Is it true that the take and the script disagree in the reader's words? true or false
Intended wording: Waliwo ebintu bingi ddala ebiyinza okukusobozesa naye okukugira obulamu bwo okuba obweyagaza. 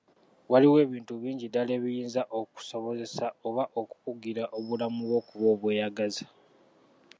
true